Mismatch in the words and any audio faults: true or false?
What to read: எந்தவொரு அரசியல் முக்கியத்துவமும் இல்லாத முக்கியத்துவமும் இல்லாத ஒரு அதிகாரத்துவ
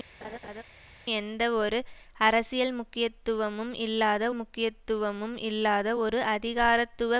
true